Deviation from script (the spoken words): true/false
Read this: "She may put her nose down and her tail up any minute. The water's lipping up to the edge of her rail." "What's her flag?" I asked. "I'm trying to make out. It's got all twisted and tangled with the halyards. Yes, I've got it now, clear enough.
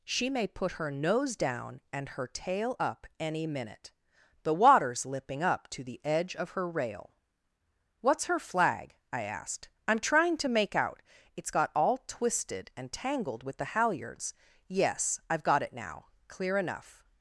false